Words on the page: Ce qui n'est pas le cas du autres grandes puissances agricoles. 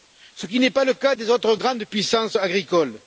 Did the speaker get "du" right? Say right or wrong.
wrong